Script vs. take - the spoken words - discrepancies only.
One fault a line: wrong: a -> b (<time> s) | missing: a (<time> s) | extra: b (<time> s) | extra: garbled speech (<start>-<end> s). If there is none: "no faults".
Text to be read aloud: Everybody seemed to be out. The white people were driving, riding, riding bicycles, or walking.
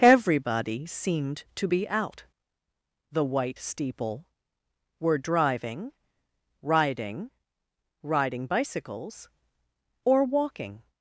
wrong: people -> steeple (3.6 s)